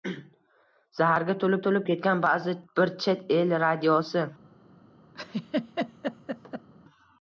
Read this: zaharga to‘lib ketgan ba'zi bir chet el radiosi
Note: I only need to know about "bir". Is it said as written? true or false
true